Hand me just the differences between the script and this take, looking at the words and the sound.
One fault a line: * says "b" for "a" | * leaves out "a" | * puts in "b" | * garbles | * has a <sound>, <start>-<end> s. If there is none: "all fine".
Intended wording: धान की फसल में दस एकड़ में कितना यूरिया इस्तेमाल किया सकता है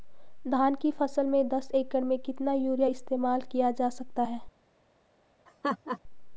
* puts in "जा"
* has a laugh, 5.5-6.0 s